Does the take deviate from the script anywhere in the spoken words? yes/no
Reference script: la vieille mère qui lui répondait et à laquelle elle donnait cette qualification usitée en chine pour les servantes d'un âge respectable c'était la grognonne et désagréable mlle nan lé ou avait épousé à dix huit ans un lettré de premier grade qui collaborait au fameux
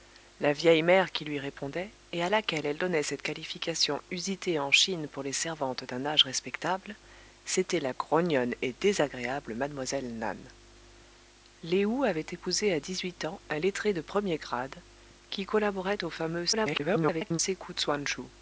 yes